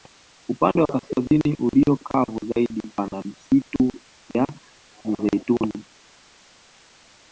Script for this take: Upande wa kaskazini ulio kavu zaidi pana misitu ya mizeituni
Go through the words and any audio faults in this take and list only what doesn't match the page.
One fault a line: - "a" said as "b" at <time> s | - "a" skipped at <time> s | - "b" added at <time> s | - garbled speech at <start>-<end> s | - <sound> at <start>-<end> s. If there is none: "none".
none